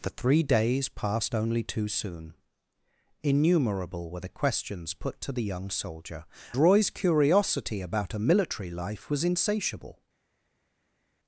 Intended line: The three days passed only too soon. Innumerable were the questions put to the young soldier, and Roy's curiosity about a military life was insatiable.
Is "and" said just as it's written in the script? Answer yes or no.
no